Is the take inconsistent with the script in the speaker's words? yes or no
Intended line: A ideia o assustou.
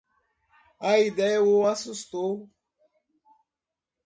no